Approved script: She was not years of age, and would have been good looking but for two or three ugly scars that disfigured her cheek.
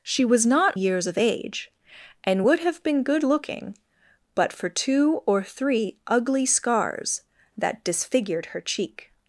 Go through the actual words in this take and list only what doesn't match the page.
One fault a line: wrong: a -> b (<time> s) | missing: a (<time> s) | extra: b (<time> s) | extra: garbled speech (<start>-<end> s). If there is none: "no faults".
no faults